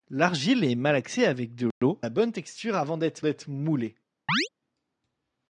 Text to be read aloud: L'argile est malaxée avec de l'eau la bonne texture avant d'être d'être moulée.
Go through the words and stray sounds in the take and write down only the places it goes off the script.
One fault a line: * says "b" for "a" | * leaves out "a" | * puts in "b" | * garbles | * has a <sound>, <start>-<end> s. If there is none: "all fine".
* has a dropout, 1.7-1.8 s
* has a chirp, 4.3-4.5 s